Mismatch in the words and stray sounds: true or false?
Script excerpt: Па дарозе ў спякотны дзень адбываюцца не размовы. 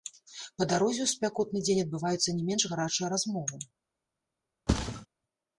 true